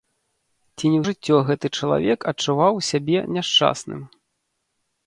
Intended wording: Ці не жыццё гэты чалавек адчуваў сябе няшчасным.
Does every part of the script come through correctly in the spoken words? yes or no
yes